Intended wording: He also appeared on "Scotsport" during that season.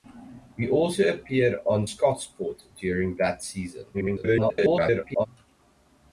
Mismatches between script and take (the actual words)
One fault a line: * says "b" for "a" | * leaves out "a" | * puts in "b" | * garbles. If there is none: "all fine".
* garbles